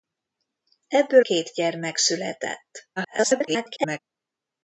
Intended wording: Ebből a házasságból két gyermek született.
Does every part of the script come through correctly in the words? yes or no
no